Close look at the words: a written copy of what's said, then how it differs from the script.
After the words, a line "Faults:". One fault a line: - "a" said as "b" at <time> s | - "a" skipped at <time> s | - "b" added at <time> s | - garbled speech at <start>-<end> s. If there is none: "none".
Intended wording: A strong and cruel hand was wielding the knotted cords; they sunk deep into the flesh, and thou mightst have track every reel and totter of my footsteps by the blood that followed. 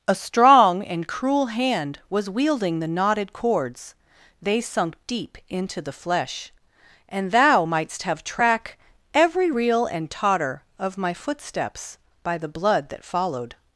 A strong and cruel hand was wielding the knotted cords; they sunk deep into the flesh, and thou mightst have track every reel and totter of my footsteps by the blood that followed.
Faults:
none